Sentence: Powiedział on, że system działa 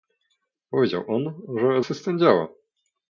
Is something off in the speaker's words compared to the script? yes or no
no